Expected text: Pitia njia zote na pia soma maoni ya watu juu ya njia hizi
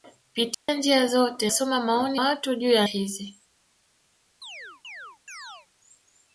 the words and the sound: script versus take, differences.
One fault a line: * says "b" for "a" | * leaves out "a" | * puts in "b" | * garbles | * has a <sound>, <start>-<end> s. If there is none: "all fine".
* has a dropout, 0.5-0.7 s
* leaves out "na pia"
* leaves out "ya"
* leaves out "njia"
* has a chirp, 4.4-5.7 s